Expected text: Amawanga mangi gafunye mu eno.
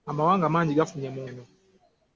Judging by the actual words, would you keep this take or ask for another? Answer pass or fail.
pass